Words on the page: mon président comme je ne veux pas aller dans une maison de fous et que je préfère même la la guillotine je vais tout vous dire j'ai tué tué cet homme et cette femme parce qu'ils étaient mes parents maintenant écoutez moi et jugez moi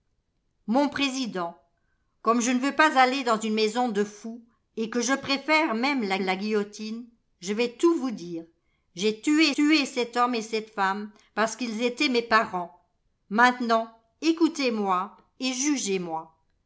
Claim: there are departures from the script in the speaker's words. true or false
false